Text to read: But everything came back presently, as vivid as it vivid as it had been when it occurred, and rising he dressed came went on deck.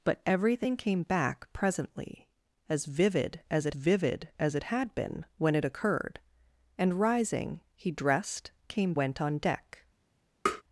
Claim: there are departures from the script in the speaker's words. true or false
false